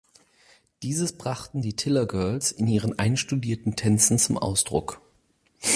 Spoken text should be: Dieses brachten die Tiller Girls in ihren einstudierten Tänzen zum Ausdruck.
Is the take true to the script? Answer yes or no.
yes